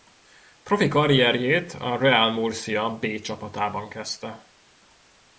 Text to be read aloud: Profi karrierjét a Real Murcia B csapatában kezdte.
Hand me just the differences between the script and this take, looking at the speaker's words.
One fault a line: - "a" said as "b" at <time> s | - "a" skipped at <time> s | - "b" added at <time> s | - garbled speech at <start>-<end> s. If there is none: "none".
none